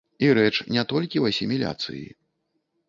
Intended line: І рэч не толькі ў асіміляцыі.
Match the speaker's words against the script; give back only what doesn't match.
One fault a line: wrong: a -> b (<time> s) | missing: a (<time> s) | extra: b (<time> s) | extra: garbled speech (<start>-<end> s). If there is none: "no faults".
no faults